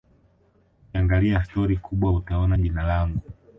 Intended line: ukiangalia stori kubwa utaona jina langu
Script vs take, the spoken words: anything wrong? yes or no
no